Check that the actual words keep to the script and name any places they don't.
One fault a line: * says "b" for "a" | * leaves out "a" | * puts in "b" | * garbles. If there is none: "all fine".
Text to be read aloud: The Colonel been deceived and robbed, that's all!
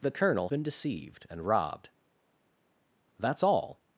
all fine